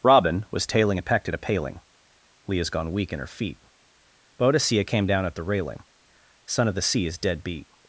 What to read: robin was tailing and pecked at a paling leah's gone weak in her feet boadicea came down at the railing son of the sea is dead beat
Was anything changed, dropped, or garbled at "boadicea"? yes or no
no